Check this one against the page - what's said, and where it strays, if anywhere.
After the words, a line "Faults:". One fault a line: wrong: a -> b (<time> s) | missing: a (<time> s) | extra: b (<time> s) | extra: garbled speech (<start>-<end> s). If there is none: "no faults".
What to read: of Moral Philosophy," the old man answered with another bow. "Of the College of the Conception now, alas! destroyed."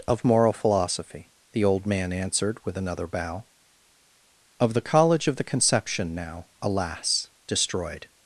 of Moral Philosophy," the old man answered with another bow. "Of the College of the Conception now, alas! destroyed."
Faults:
no faults